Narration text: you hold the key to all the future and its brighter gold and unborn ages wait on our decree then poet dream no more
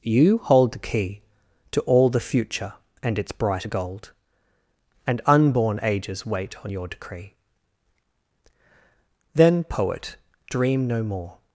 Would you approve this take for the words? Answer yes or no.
no